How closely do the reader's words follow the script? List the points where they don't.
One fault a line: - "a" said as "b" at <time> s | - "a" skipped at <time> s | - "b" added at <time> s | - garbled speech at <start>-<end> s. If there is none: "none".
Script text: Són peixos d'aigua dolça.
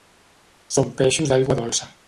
none